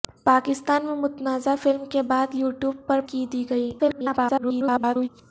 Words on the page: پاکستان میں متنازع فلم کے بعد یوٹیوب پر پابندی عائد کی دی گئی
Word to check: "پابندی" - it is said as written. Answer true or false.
false